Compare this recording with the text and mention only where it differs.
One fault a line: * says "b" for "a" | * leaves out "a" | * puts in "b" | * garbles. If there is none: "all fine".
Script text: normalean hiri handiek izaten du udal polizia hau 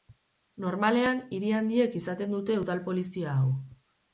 * says "dute" for "du"